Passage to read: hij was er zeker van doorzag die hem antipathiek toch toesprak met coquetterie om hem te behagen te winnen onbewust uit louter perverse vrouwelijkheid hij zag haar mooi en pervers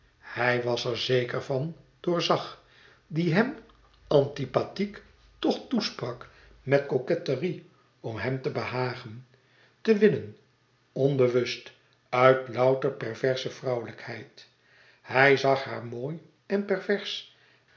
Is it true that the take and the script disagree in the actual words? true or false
false